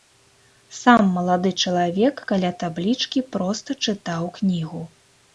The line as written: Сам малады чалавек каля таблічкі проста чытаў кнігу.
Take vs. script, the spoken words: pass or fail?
pass